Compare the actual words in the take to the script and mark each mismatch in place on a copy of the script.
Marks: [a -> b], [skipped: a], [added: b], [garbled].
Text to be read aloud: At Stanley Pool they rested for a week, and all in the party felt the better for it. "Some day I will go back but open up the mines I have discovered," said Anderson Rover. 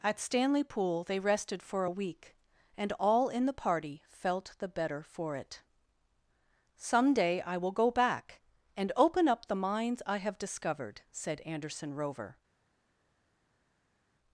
At Stanley Pool they rested for a week, and all in the party felt the better for it. "Some day I will go back [but -> and] open up the mines I have discovered," said Anderson Rover.